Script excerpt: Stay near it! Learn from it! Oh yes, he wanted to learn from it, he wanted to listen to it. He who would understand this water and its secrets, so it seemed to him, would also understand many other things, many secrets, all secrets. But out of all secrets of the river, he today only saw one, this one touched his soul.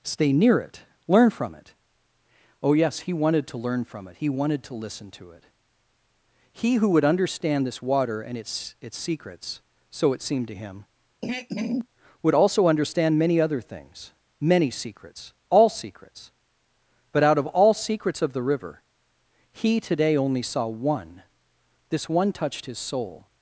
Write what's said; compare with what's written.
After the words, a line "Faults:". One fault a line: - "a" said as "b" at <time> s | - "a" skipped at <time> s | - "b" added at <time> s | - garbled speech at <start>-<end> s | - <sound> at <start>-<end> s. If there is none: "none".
Stay near it! Learn from it! Oh yes, he wanted to learn from it, he wanted to listen to it. He who would understand this water and its its secrets, so it seemed to him, would also understand many other things, many secrets, all secrets. But out of all secrets of the river, he today only saw one, this one touched his soul.
Faults:
- "its" added at 8.8 s
- throat clearing at 11.2-11.9 s